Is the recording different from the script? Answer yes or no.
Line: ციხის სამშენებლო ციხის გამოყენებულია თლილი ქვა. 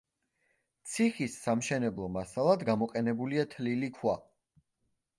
yes